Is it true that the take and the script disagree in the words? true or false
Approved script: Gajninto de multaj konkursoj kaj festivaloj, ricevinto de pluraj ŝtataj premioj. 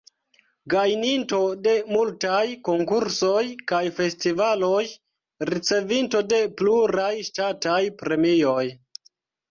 false